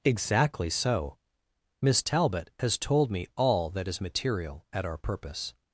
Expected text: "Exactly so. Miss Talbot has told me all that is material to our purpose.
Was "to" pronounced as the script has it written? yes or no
no